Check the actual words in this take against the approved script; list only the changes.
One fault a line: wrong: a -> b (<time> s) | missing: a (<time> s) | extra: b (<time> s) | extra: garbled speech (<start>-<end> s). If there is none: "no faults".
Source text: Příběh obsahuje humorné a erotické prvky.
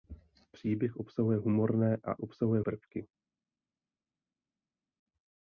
wrong: erotické -> obsahuje (2.2 s)